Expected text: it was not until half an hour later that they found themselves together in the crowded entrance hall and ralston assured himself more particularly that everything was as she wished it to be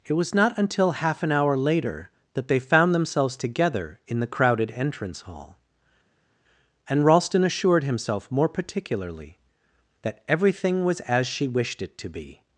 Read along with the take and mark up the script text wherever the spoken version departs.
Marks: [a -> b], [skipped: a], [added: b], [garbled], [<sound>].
it was not until half an hour later that they found themselves together in the crowded entrance hall and ralston assured himself more particularly that everything was as she wished it to be